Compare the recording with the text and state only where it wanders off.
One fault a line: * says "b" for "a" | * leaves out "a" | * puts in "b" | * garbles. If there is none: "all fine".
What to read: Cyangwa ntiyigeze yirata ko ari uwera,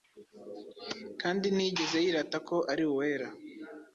* says "Kandi" for "Cyangwa"